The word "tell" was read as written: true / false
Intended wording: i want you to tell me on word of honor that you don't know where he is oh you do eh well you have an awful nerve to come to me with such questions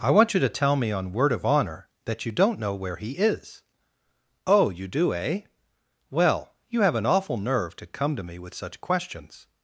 true